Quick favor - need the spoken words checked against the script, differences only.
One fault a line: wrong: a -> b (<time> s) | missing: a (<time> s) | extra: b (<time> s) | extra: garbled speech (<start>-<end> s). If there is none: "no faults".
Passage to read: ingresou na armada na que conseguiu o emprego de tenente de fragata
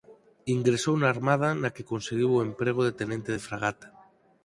no faults